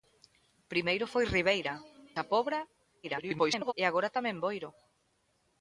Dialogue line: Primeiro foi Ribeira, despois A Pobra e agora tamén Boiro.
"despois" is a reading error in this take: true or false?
true